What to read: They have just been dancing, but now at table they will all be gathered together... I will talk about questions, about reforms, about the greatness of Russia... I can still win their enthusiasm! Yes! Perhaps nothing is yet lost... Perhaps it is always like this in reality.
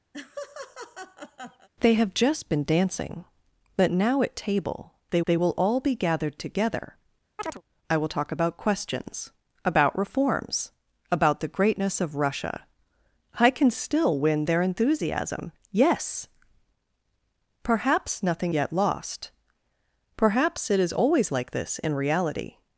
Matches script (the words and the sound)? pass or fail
fail